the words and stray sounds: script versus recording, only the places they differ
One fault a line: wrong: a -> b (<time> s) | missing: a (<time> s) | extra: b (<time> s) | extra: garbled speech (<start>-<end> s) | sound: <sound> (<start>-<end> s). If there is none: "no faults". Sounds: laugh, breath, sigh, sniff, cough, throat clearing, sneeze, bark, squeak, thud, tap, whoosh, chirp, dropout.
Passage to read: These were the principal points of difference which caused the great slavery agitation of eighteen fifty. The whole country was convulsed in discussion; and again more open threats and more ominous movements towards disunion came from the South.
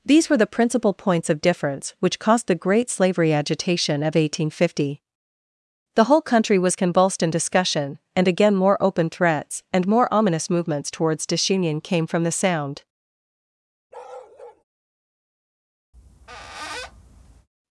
wrong: South -> Sound (12.3 s)
sound: bark (13.9-14.6 s)
sound: squeak (15.9-17.5 s)